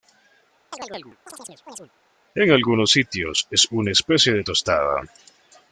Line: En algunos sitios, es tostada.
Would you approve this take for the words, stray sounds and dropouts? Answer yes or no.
no